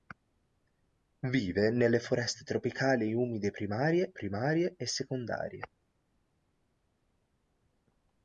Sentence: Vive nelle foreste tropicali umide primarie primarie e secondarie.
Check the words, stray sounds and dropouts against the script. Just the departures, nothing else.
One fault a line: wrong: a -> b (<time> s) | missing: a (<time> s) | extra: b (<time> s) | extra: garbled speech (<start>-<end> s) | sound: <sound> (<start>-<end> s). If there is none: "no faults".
no faults